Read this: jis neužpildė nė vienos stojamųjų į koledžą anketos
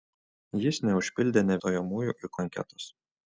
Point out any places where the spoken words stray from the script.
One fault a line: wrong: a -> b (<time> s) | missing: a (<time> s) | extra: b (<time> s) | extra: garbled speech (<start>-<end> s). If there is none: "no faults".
missing: vienos (1.6 s)
missing: koledžą (2.3 s)